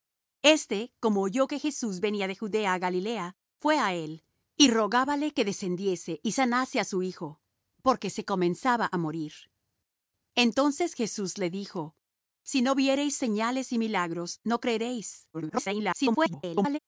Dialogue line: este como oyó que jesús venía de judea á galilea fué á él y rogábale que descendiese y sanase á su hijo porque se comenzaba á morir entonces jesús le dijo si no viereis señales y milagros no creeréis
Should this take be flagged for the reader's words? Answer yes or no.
yes